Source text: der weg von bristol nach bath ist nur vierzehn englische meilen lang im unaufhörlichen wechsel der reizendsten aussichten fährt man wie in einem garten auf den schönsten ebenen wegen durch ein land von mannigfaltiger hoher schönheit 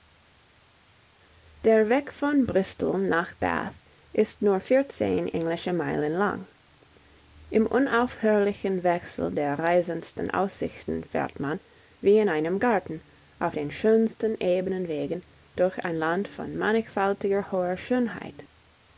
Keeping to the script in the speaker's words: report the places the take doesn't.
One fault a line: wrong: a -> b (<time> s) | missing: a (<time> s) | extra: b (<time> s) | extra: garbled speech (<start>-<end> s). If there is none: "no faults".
no faults